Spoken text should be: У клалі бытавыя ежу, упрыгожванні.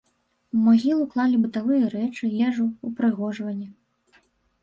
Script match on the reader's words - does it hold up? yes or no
no